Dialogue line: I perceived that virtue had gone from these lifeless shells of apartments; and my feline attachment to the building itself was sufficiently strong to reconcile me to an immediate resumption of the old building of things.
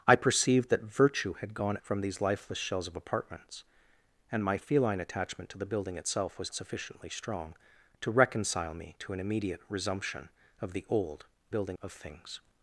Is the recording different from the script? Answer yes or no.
no